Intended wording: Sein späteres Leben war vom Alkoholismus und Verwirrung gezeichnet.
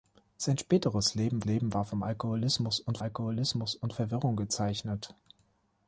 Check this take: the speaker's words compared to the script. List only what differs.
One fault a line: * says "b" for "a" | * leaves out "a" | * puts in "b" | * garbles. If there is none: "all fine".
* puts in "Leben"
* puts in "Alkoholismus und"